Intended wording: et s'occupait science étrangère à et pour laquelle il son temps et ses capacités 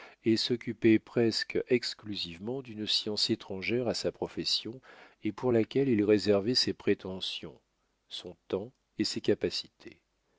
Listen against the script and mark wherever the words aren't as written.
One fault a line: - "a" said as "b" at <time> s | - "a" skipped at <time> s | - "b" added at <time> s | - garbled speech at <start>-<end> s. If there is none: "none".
- "presque exclusivement d'une" added at 1.0 s
- "sa profession" added at 3.9 s
- "réservait ses prétentions" added at 6.0 s